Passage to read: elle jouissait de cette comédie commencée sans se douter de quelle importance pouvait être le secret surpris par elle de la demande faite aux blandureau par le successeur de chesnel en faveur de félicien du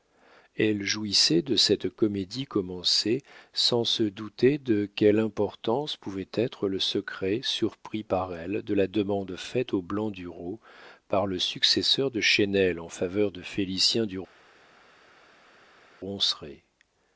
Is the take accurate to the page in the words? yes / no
yes